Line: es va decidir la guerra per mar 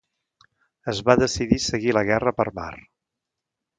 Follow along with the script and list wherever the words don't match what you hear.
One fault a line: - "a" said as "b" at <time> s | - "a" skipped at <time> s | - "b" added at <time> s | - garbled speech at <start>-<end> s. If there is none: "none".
- "seguir" added at 1.6 s